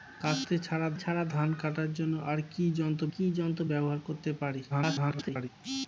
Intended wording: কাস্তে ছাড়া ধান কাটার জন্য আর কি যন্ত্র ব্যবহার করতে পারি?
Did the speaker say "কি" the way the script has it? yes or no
yes